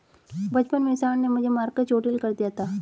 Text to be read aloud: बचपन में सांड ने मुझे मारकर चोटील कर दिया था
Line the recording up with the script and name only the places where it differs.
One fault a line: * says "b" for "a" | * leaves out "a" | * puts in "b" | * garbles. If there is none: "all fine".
all fine